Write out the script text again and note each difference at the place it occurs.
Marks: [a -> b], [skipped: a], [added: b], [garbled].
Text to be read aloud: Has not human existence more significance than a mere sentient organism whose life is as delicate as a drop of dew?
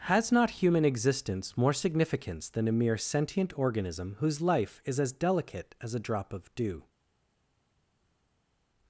Has not human existence more significance than a mere sentient organism whose life is as delicate as a drop of dew?